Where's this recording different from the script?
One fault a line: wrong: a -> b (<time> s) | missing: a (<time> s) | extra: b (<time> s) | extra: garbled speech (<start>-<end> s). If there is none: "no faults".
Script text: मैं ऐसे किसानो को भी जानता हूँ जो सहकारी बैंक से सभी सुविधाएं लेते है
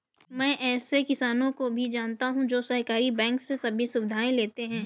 no faults